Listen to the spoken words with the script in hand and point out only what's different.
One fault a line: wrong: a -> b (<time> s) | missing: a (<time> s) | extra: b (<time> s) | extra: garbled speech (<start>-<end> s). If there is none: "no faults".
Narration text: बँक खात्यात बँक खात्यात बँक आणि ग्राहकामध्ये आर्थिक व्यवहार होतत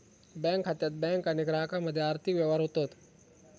missing: खात्यात बँक (1.3 s)